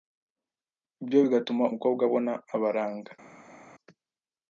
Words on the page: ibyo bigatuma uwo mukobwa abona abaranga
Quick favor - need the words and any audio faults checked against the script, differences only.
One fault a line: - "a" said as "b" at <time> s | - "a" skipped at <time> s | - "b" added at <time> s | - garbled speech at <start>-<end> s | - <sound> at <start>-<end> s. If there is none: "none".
- "uwo" skipped at 1.6 s